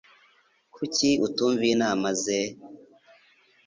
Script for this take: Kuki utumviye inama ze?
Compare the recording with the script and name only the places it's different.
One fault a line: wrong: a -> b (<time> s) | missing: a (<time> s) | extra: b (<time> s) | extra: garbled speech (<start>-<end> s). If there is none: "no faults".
no faults